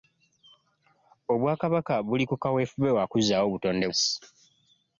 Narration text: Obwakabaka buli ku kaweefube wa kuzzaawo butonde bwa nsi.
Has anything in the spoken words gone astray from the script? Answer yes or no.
yes